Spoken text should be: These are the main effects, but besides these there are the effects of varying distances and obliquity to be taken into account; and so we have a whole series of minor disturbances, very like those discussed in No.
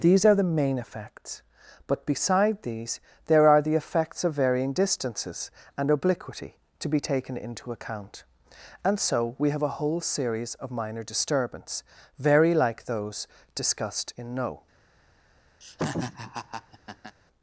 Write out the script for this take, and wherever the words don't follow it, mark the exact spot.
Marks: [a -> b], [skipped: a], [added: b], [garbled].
These are the main effects, but [besides -> beside] these there are the effects of varying distances and obliquity to be taken into account; and so we have a whole series of minor [disturbances, -> disturbance] very like those discussed in No.